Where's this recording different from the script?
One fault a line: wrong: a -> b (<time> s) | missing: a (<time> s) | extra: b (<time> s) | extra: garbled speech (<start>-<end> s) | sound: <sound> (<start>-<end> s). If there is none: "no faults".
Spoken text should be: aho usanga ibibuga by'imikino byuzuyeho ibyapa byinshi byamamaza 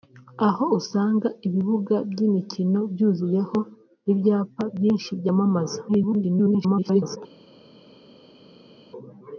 extra: garbled speech (5.9-7.2 s)